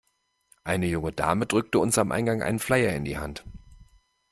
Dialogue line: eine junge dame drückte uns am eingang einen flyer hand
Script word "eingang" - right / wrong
right